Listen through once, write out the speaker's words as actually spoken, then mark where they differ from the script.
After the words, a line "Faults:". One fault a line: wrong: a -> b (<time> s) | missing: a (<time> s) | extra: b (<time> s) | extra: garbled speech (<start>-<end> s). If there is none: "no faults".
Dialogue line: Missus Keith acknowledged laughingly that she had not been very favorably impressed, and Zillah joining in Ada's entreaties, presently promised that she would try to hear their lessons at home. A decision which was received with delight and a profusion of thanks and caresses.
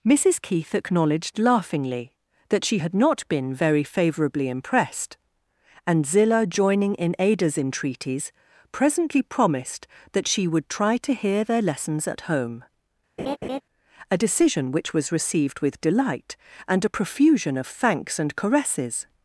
Missus Keith acknowledged laughingly that she had not been very favorably impressed, and Zillah joining in Ada's entreaties, presently promised that she would try to hear their lessons at home. A decision which was received with delight and a profusion of thanks and caresses.
Faults:
no faults